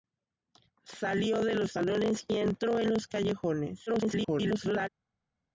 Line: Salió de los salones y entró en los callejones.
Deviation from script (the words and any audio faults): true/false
true